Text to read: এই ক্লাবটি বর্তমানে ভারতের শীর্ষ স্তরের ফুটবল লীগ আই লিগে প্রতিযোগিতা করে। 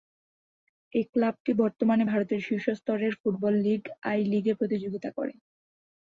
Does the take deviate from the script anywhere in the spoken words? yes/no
no